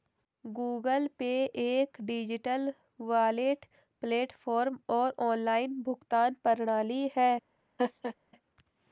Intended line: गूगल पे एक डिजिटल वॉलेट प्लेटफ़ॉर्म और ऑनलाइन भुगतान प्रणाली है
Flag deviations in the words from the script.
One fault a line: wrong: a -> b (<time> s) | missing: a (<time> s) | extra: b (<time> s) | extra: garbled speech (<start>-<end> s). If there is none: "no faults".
no faults